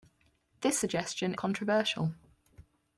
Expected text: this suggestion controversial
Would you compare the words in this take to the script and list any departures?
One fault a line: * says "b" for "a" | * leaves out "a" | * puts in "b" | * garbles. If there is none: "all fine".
all fine